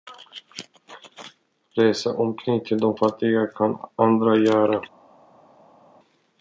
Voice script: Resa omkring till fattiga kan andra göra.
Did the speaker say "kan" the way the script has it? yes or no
yes